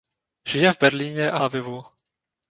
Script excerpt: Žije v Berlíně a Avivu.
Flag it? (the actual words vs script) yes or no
no